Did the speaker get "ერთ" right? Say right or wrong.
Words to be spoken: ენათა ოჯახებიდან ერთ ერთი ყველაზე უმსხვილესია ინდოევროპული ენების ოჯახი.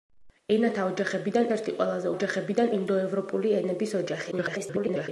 wrong